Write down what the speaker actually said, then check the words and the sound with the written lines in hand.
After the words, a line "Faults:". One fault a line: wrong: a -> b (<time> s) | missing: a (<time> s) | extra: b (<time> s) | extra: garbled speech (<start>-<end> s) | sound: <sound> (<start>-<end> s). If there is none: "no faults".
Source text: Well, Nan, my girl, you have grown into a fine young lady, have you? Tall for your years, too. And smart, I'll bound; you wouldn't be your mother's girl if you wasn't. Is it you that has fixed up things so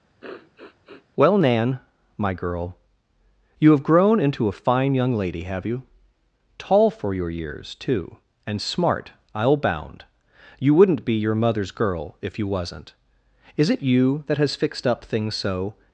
Well, Nan, my girl, you have grown into a fine young lady, have you? Tall for your years, too. And smart, I'll bound; you wouldn't be your mother's girl if you wasn't. Is it you that has fixed up things so
Faults:
sound: sniff (0.2-1.1 s)